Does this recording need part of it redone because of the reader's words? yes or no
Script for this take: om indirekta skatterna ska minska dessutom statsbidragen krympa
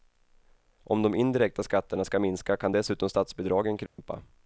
yes